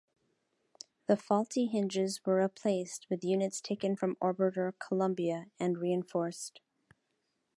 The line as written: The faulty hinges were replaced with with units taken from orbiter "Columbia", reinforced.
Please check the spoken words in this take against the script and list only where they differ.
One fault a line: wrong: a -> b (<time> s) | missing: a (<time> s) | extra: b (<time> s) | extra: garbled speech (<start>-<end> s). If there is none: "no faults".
missing: with (3.2 s)
extra: and (5.6 s)